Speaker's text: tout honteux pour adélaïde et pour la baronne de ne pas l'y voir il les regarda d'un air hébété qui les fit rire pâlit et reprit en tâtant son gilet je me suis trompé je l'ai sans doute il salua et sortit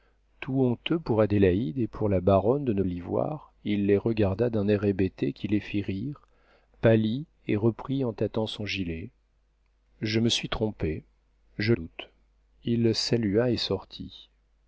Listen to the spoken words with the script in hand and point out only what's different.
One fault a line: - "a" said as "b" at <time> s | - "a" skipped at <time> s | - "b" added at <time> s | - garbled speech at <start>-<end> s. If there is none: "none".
- "pas" skipped at 2.8 s
- "l'ai sans" skipped at 11.7 s